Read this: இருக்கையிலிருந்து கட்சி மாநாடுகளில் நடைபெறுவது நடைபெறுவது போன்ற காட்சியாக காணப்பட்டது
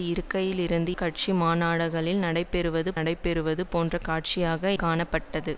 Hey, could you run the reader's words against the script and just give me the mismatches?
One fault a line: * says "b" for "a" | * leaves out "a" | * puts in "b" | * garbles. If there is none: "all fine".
all fine